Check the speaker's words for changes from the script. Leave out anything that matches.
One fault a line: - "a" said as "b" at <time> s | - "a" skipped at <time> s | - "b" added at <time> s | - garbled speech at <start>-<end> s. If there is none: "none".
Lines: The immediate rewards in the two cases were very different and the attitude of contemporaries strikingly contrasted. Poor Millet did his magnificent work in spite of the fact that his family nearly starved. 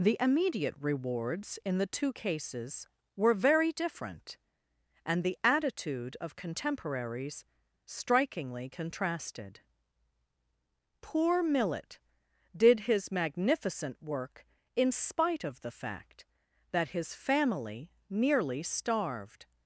none